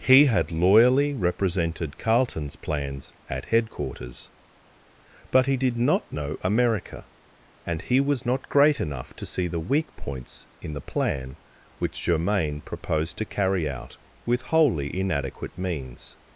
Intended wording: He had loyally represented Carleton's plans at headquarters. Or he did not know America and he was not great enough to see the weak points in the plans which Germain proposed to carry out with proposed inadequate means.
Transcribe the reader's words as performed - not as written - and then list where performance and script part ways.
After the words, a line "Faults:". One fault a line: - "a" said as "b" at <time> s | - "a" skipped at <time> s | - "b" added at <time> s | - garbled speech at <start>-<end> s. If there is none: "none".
He had loyally represented Carleton's plans at headquarters. But he did not know America and he was not great enough to see the weak points in the plan which Germain proposed to carry out with wholly inadequate means.
Faults:
- "Or" said as "But" at 5.3 s
- "plans" said as "plan" at 10.8 s
- "proposed" said as "wholly" at 14.4 s